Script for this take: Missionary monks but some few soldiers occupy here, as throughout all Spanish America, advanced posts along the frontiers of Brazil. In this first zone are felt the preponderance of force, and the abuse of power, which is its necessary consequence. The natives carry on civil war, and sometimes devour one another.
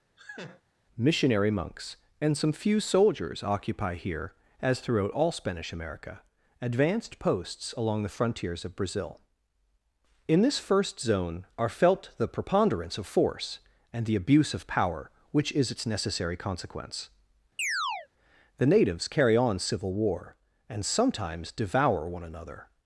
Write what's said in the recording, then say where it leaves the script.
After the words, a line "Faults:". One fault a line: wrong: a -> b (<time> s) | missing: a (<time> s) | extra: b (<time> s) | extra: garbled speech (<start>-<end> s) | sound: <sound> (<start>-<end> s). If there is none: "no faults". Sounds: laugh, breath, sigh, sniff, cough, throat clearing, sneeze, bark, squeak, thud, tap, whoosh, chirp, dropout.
Missionary monks and some few soldiers occupy here, as throughout all Spanish America, advanced posts along the frontiers of Brazil. In this first zone are felt the preponderance of force, and the abuse of power, which is its necessary consequence. The natives carry on civil war, and sometimes devour one another.
Faults:
sound: laugh (0.2-0.6 s)
wrong: but -> and (2.2 s)
sound: chirp (17.6-18.1 s)